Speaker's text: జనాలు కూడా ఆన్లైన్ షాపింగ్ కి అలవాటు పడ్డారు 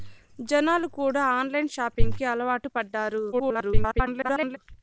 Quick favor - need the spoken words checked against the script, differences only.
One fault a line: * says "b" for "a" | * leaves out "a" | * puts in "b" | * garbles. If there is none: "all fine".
* garbles